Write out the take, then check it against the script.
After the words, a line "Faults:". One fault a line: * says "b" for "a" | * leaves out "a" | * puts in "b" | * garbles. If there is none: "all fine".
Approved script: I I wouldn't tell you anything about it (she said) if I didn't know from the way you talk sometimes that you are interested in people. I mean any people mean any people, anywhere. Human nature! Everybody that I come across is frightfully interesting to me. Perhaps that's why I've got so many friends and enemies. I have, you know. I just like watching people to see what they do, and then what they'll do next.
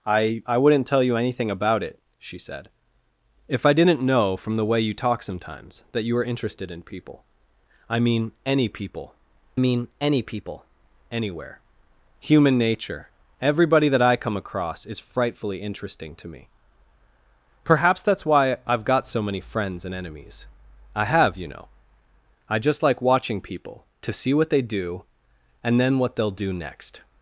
I I wouldn't tell you anything about it (she said) if I didn't know from the way you talk sometimes that you are interested in people. I mean any people mean any people, anywhere. Human nature! Everybody that I come across is frightfully interesting to me. Perhaps that's why I've got so many friends and enemies. I have, you know. I just like watching people to see what they do, and then what they'll do next.
Faults:
all fine